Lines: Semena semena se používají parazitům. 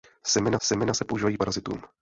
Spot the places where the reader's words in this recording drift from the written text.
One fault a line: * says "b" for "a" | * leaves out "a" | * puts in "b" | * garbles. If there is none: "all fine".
all fine